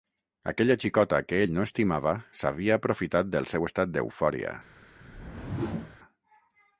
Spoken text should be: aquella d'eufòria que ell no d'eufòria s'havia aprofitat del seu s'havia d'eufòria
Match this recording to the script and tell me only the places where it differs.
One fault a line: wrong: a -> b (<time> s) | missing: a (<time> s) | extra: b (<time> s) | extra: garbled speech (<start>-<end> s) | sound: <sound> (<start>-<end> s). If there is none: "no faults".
wrong: d'eufòria -> xicota (0.8 s)
wrong: d'eufòria -> estimava (1.7 s)
wrong: s'havia -> estat (3.7 s)
sound: whoosh (5.0-6.0 s)